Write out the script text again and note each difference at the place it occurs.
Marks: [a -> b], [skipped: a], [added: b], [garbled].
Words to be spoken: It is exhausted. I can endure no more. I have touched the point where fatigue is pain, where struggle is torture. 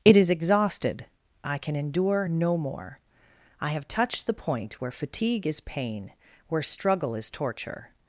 It is exhausted. I can endure no more. I have touched the point where fatigue is pain, where struggle is torture.